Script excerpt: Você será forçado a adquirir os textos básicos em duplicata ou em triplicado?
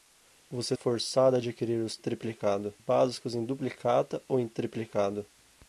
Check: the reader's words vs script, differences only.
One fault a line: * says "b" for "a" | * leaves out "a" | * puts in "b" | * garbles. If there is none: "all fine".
* leaves out "será"
* says "triplicado" for "textos"